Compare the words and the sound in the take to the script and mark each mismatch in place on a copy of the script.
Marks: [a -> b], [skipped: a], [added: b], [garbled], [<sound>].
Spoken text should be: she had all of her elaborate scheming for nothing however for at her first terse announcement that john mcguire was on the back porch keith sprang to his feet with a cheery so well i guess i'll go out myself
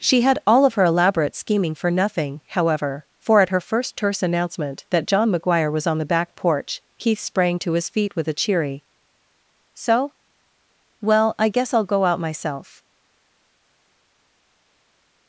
she had all of her elaborate scheming for nothing however for at her first terse announcement that john mcguire was on the back porch keith sprang to his feet with a cheery so well i guess i'll go out myself